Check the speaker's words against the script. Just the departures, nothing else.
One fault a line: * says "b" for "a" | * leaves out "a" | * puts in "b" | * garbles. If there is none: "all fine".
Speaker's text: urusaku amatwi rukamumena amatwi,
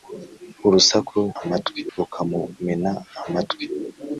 all fine